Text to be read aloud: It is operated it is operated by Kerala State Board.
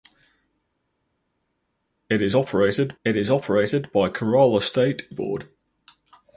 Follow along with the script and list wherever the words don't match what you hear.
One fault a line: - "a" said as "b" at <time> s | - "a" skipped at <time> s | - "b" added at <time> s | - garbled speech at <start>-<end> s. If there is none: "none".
none